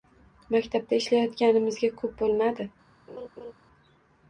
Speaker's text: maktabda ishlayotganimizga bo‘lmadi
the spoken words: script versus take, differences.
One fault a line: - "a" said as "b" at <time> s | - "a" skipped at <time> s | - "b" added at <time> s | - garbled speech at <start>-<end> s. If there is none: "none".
- "ko‘p" added at 2.0 s